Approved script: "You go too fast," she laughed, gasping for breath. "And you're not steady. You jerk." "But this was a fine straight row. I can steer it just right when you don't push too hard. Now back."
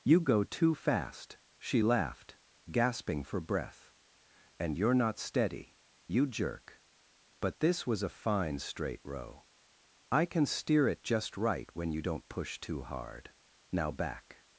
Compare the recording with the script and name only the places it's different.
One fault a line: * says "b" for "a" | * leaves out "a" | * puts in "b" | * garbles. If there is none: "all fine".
all fine